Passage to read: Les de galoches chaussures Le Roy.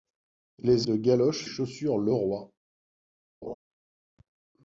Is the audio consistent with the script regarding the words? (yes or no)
yes